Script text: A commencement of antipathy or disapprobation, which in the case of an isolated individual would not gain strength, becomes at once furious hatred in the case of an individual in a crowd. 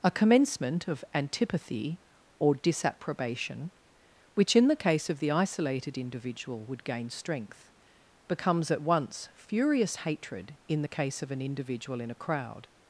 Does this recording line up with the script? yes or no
no